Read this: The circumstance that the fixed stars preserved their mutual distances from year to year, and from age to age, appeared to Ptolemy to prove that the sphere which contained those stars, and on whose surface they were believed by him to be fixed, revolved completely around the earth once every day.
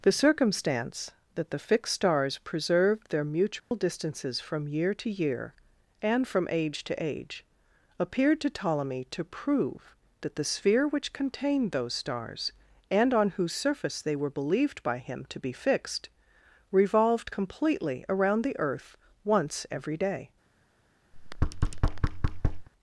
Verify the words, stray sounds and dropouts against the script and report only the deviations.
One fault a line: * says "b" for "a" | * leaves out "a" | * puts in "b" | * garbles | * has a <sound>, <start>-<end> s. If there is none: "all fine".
* has a dropout, 3.6-3.7 s
* has a thud, 21.1-22.7 s